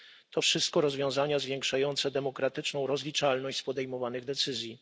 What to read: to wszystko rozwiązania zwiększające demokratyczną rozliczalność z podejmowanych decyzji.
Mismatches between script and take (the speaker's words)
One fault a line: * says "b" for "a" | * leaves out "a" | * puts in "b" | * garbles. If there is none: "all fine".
all fine